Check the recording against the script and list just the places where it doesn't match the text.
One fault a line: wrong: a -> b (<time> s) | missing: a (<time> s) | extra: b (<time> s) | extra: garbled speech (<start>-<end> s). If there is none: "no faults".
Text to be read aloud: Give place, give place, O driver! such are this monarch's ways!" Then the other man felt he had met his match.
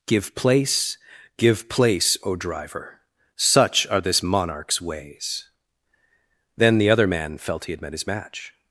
no faults